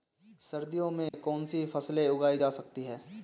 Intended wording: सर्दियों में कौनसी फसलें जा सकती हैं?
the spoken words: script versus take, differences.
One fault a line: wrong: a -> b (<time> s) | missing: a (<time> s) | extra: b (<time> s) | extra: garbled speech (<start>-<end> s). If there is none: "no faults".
extra: उगाई (2.1 s)